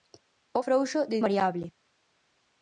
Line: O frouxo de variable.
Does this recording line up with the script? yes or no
yes